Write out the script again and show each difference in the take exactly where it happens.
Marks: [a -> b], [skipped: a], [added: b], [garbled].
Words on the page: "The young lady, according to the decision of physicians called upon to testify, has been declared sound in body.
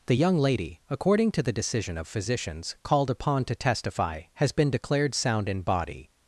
"The young lady, according to the decision of physicians called upon to testify, has been declared sound in body.